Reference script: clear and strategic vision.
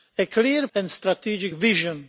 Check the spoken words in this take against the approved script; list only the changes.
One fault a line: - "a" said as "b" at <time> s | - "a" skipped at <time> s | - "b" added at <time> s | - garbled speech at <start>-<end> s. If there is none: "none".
none